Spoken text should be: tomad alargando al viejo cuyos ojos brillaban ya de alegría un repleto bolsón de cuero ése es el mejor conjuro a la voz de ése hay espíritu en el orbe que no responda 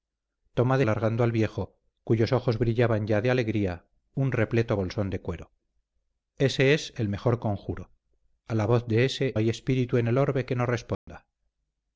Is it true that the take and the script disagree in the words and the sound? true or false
true